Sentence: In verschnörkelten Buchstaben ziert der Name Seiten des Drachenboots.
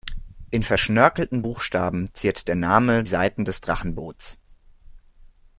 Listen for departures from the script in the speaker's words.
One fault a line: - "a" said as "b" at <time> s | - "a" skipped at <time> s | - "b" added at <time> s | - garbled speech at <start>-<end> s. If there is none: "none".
none